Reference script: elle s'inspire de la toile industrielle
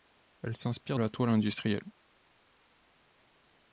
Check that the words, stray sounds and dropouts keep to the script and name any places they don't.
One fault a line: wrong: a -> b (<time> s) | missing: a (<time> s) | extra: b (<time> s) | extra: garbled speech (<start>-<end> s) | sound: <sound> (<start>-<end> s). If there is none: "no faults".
missing: de (1.0 s)